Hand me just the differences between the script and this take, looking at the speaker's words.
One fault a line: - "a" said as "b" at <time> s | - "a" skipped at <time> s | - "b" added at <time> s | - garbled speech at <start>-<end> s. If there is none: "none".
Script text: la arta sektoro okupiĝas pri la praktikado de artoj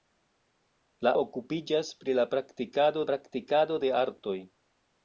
- "arta sektoro" skipped at 1.1 s
- "praktikado" added at 3.1 s